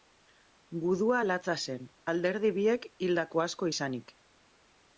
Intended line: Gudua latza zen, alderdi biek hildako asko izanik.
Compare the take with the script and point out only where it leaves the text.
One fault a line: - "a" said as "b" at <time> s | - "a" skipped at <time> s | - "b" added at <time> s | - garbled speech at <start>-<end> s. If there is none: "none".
none